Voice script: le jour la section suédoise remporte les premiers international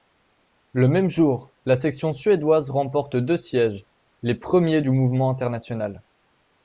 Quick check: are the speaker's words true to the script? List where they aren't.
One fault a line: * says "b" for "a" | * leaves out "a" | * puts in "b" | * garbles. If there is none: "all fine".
* puts in "même"
* puts in "deux sièges"
* puts in "du mouvement"